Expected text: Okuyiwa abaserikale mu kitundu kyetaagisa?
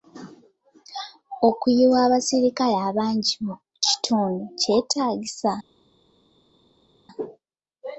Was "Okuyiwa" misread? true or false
false